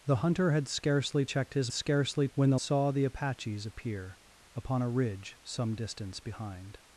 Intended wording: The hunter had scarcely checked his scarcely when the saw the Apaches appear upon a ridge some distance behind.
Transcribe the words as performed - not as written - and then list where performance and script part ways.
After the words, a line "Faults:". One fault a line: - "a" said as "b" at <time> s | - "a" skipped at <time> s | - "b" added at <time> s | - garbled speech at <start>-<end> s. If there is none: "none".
The hunter had scarcely checked his scarcely when the saw the Apaches appear upon a ridge some distance behind.
Faults:
none